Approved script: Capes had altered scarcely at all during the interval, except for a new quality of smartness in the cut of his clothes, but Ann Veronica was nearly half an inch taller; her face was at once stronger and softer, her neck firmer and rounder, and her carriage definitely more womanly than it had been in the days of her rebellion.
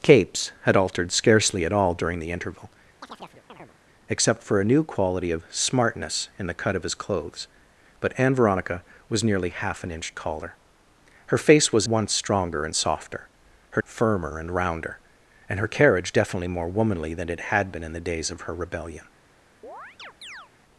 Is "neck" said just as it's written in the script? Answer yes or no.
no